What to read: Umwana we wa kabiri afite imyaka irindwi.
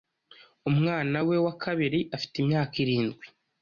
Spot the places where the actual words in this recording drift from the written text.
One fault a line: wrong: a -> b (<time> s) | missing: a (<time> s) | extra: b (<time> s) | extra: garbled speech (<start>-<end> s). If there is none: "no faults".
no faults